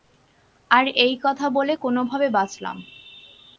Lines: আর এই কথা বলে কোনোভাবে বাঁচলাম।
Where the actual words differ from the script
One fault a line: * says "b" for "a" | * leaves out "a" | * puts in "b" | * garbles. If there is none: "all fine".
all fine